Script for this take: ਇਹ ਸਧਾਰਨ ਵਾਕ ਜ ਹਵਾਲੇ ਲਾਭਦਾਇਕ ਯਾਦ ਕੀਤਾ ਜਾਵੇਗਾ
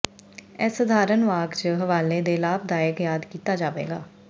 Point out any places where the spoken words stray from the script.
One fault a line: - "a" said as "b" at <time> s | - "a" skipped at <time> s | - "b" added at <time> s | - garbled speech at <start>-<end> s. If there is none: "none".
- "ਦੇ" added at 2.2 s